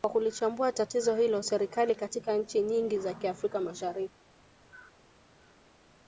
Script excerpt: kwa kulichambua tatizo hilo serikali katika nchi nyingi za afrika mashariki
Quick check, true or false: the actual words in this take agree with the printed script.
true